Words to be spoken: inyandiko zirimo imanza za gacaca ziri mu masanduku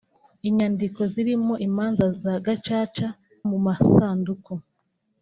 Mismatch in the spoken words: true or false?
true